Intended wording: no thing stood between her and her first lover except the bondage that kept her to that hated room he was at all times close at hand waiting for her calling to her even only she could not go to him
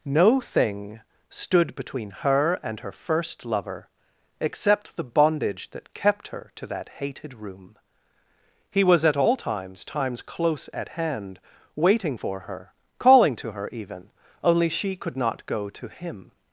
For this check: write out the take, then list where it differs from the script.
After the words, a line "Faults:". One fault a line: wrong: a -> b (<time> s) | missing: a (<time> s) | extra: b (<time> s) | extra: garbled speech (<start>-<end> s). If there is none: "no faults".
no thing stood between her and her first lover except the bondage that kept her to that hated room he was at all times times close at hand waiting for her calling to her even only she could not go to him
Faults:
extra: times (9.8 s)